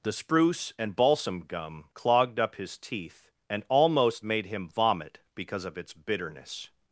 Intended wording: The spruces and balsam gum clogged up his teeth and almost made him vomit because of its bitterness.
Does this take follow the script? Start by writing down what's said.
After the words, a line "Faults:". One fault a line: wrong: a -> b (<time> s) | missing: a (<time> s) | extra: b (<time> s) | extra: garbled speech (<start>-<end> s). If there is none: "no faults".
The spruce and balsam gum clogged up his teeth and almost made him vomit because of its bitterness.
Faults:
wrong: spruces -> spruce (0.1 s)